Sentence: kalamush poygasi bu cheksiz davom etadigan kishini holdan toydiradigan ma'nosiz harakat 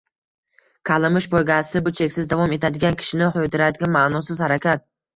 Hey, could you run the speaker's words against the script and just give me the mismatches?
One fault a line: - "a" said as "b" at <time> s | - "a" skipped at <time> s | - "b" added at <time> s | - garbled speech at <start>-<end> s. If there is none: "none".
- "holdan" skipped at 3.3 s